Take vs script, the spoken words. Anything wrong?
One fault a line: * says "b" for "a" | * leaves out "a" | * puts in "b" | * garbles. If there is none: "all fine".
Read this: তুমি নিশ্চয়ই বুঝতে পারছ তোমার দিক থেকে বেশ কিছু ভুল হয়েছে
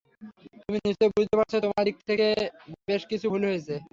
all fine